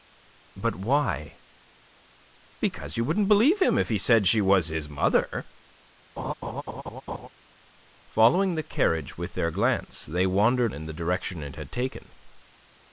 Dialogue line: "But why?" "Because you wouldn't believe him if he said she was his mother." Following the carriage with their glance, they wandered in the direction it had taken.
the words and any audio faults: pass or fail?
fail